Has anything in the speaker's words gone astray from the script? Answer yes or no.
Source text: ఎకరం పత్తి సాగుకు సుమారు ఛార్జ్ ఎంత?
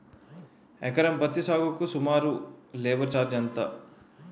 yes